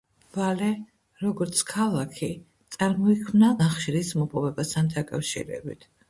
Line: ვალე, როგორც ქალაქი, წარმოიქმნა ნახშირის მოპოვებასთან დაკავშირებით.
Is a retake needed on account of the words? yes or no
no